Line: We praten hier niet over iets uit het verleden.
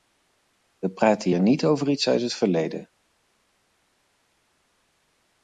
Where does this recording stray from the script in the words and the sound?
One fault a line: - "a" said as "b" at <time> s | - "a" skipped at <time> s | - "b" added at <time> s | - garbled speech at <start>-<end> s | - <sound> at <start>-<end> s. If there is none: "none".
none